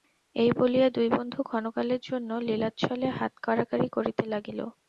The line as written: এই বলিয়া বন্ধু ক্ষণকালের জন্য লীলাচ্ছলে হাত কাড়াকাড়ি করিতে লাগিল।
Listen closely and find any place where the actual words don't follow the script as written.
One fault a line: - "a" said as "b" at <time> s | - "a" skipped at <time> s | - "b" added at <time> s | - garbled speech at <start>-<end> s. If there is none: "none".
- "দুই" added at 0.9 s